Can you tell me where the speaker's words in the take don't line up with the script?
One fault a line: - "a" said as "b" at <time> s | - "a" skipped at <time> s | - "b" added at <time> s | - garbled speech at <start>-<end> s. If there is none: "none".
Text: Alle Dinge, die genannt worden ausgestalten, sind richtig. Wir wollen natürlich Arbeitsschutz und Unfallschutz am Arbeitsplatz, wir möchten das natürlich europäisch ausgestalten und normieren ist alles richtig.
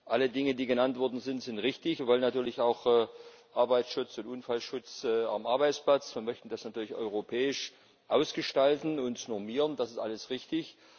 - "ausgestalten" said as "sind" at 1.2 s
- "auch" added at 2.6 s
- "das" added at 9.8 s